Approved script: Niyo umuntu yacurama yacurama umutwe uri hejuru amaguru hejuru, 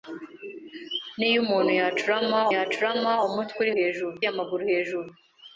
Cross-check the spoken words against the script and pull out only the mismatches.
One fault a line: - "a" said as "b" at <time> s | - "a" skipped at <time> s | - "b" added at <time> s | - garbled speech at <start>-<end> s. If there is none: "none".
none